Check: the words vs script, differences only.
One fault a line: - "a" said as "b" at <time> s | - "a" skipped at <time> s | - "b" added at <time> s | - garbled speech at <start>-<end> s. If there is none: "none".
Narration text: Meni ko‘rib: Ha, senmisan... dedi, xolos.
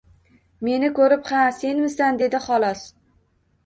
none